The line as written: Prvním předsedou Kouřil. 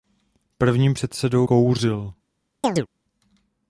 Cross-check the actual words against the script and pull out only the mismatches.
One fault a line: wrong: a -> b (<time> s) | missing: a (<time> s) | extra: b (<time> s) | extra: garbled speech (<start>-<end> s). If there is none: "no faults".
no faults